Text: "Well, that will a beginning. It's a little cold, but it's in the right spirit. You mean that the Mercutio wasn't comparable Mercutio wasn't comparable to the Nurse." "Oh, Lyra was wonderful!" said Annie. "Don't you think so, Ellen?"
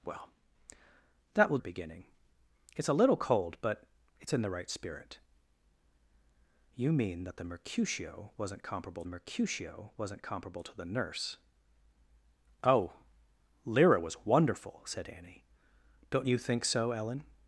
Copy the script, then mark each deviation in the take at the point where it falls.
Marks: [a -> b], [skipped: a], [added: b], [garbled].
"Well, that will a beginning. It's a little cold, but it's in the right spirit. You mean that the Mercutio wasn't comparable Mercutio wasn't comparable to the Nurse." "Oh, Lyra was wonderful!" said Annie. "Don't you think so, Ellen?"